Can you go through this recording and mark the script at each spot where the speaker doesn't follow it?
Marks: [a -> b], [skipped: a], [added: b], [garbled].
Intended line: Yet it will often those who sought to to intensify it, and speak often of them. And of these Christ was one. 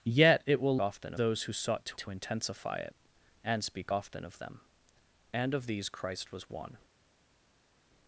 Yet it will often those who sought to to intensify it, and speak often of them. And of these Christ was one.